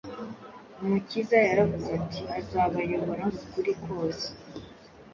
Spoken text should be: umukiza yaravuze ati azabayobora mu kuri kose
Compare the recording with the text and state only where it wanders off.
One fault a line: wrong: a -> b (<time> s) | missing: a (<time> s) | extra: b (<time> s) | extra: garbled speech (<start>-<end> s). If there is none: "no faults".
no faults